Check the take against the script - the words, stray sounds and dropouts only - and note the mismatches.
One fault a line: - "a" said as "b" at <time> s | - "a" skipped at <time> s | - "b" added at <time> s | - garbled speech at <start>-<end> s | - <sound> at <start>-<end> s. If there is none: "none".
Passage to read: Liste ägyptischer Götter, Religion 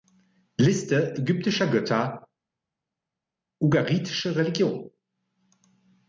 - "Ugaritische" added at 3.6 s